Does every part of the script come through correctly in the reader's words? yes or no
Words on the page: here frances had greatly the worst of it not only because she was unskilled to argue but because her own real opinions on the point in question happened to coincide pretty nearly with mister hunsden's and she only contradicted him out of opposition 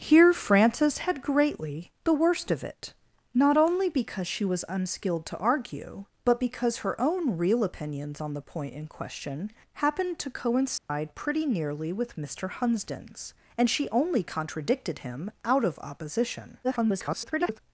no